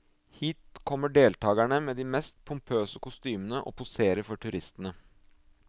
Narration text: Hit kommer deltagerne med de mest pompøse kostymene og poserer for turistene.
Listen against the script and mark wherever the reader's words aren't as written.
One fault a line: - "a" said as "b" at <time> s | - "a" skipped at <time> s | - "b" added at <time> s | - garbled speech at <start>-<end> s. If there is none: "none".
none